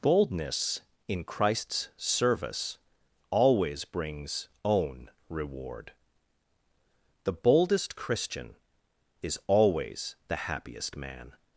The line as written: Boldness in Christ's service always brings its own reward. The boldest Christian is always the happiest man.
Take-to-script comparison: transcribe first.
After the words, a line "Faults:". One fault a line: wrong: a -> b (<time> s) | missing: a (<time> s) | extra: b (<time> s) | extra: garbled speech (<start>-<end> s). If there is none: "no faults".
Boldness in Christ's service always brings own reward. The boldest Christian is always the happiest man.
Faults:
missing: its (4.5 s)